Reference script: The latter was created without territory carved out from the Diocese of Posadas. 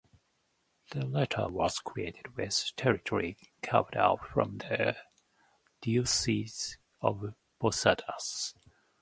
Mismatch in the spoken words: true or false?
true